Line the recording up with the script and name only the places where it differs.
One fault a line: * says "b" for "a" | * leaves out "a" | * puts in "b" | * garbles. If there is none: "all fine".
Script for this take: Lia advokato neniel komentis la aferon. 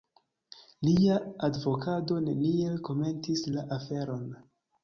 all fine